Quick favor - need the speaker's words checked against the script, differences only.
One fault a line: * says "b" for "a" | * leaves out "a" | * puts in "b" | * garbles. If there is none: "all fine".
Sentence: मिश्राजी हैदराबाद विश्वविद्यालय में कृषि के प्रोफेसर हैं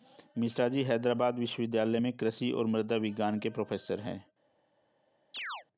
* puts in "और मृदा विज्ञान"